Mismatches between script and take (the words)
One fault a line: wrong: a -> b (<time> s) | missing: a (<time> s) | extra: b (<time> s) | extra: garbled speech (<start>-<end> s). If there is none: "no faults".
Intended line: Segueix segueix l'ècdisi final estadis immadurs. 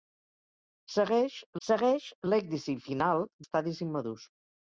no faults